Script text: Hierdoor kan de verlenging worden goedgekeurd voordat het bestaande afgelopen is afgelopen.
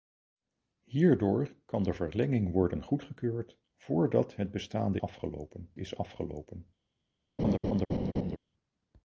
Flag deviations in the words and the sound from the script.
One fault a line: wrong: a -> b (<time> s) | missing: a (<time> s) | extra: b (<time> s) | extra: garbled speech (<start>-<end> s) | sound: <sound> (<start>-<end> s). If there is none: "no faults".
sound: laugh (7.4-8.4 s)